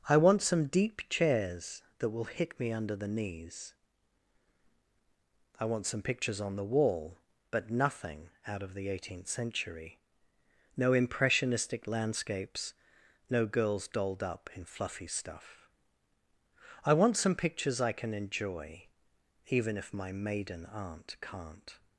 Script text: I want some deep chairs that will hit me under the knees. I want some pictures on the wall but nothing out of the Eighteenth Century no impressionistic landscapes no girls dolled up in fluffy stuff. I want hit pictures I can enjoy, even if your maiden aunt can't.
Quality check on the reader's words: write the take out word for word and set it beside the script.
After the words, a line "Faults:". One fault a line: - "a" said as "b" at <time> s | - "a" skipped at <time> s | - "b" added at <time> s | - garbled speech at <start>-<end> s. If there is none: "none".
I want some deep chairs that will hit me under the knees. I want some pictures on the wall but nothing out of the Eighteenth Century no impressionistic landscapes no girls dolled up in fluffy stuff. I want some pictures I can enjoy, even if my maiden aunt can't.
Faults:
- "hit" said as "some" at 17.1 s
- "your" said as "my" at 19.9 s